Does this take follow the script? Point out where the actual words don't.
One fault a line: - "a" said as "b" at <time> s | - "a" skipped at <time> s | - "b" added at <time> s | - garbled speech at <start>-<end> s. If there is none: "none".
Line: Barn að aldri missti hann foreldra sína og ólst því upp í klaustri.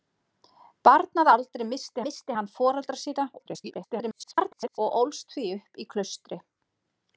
- "missti" added at 2.0 s
- garbled speech at 3.4-4.8 s